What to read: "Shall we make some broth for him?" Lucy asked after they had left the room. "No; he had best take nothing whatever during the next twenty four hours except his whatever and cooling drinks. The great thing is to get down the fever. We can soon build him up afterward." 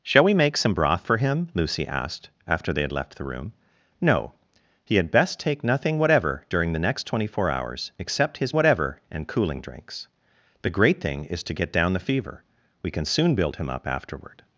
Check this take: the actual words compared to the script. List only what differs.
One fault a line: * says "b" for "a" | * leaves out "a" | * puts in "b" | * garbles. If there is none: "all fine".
all fine